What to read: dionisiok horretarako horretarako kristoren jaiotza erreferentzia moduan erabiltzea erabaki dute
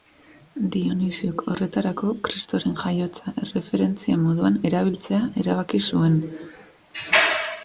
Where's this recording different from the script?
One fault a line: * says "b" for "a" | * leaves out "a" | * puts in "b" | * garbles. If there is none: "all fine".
* leaves out "horretarako"
* says "zuen" for "dute"